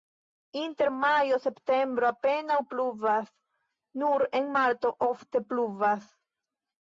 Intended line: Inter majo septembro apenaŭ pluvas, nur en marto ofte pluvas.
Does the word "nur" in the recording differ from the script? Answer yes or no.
no